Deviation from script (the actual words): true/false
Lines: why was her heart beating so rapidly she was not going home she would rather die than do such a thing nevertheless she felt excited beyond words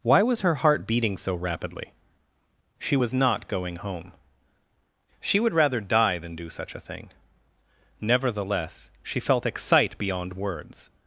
true